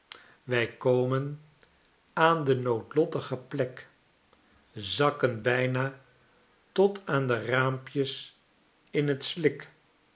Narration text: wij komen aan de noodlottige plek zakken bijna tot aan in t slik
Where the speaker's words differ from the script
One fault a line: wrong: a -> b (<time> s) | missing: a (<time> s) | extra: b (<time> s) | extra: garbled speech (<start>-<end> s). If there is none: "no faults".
extra: de raampjes (7.3 s)